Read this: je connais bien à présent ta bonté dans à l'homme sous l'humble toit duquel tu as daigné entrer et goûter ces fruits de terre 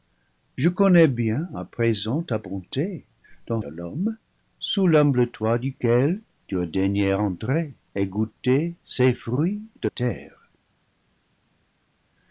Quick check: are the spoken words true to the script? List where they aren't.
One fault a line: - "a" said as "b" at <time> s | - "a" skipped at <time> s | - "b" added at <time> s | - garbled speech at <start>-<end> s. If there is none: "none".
none